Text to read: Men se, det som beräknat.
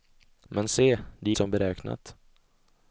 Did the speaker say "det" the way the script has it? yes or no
yes